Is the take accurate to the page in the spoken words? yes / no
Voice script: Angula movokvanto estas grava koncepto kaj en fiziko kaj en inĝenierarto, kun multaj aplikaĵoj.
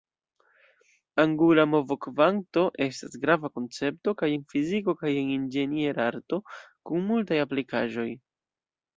yes